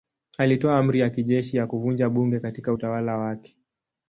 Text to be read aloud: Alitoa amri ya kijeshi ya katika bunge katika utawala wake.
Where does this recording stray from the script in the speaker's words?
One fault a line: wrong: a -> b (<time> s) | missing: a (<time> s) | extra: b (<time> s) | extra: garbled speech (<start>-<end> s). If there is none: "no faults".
wrong: katika -> kuvunja (1.7 s)